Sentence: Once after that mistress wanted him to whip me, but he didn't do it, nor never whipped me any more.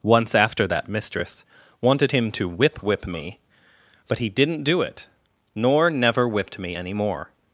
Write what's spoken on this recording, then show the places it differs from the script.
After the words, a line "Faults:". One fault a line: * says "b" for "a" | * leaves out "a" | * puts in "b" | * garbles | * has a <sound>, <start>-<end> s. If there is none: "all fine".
Once after that mistress wanted him to whip whip me, but he didn't do it, nor never whipped me any more.
Faults:
* puts in "whip"